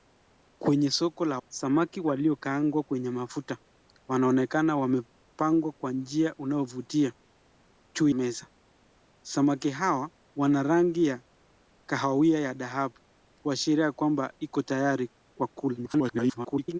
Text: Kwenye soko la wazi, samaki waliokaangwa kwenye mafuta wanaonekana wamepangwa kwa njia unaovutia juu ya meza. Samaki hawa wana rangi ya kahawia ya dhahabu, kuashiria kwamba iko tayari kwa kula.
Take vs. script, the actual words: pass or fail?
fail